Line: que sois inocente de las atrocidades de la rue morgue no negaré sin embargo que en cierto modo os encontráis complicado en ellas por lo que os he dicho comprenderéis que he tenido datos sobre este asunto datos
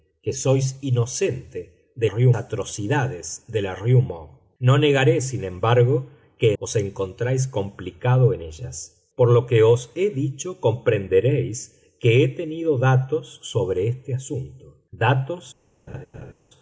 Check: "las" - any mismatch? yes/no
yes